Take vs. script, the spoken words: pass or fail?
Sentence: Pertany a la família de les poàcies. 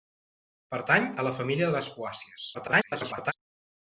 fail